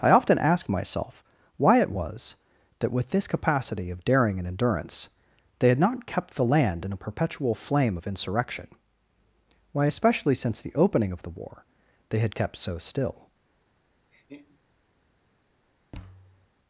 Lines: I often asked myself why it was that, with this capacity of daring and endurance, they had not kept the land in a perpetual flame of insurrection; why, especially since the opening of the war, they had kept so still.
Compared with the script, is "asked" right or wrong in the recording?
wrong